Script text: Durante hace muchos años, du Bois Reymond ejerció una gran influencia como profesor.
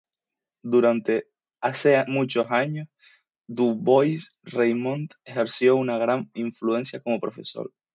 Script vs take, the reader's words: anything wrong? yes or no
no